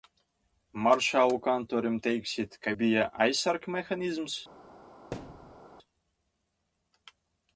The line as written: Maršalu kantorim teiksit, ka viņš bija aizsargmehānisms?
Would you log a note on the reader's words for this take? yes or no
yes